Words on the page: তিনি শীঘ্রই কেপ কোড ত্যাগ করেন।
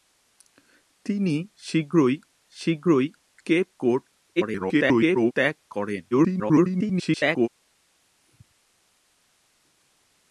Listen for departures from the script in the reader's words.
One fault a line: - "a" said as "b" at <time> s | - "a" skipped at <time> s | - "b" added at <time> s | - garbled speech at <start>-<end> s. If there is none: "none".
- "শীঘ্রই" added at 2.5 s
- garbled speech at 4.4-5.3 s
- garbled speech at 6.1-7.5 s